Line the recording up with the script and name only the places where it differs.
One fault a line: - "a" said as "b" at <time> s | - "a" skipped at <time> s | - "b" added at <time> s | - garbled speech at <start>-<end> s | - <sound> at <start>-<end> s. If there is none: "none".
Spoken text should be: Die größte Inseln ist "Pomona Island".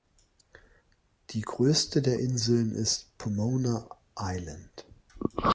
- "der" added at 2.0 s